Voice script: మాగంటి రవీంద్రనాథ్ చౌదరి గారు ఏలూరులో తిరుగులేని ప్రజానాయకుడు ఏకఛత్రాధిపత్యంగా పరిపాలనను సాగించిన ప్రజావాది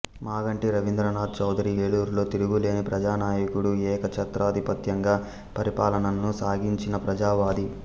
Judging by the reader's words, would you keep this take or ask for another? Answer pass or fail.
fail